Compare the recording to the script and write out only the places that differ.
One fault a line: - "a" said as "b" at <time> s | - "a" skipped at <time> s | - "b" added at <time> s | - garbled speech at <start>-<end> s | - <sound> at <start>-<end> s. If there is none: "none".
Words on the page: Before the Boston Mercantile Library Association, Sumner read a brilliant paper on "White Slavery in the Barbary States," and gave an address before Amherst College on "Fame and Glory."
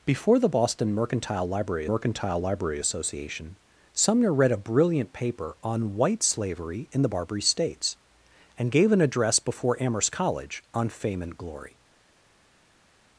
- "Mercantile Library" added at 1.9 s